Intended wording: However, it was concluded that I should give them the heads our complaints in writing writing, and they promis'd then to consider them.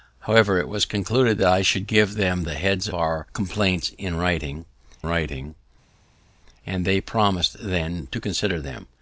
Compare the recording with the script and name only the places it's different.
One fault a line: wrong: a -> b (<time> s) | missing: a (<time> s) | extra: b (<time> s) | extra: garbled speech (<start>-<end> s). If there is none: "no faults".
no faults